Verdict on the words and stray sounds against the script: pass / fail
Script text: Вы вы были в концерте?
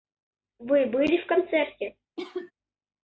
fail